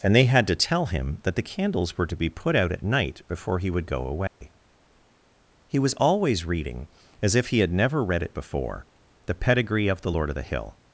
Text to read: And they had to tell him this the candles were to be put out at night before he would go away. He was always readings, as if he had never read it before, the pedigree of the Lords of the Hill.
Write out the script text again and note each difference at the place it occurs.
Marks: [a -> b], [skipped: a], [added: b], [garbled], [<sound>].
And they had to tell him [this -> that] the candles were to be put out at night before he would go away. [dropout] He was always [readings, -> reading] as if he had never read it before, the pedigree of the [Lords -> Lord] of the Hill.